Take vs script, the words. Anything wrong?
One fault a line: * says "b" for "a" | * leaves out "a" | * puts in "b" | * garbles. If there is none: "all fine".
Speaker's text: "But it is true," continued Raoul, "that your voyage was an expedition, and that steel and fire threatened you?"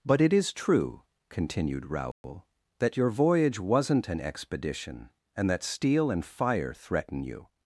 * says "wasn't" for "was"
* says "threaten" for "threatened"